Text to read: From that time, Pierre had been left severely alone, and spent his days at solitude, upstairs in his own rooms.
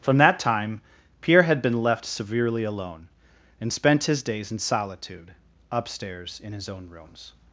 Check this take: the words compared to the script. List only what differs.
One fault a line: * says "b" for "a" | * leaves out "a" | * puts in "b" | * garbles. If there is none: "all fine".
* says "in" for "at"